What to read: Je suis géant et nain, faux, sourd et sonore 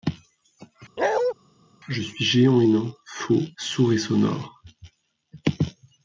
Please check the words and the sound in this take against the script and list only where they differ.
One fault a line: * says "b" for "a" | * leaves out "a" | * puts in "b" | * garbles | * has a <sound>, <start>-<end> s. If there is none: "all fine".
* has a bark, 1.0-1.3 s